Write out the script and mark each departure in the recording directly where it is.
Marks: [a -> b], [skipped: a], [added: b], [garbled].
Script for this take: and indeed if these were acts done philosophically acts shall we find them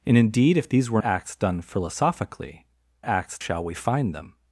and indeed if these were acts done philosophically acts shall we find them